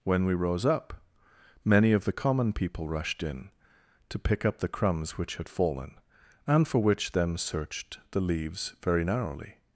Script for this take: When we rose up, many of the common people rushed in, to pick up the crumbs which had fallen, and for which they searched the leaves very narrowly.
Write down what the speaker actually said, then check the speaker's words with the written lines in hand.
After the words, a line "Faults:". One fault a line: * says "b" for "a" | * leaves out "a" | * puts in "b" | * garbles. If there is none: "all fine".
When we rose up, many of the common people rushed in, to pick up the crumbs which had fallen, and for which them searched the leaves very narrowly.
Faults:
* says "them" for "they"